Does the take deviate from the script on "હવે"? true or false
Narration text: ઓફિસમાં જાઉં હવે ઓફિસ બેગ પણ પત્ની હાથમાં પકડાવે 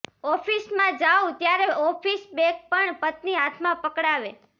true